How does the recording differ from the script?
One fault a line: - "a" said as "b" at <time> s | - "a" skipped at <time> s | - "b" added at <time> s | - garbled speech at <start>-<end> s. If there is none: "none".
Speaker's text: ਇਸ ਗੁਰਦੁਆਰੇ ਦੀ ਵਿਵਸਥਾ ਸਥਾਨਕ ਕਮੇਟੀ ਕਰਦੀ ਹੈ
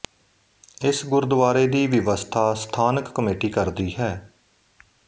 none